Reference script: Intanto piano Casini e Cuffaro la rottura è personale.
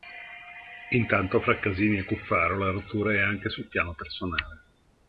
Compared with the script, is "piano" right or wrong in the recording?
wrong